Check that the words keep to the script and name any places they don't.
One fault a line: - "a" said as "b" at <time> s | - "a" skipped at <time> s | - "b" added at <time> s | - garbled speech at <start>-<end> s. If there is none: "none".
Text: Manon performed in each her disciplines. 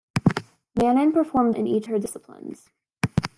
none